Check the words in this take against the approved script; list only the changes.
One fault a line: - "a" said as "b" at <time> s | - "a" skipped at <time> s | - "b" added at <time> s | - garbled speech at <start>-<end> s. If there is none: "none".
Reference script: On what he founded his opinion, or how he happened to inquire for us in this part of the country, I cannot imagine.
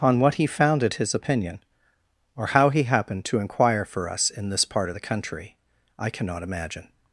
none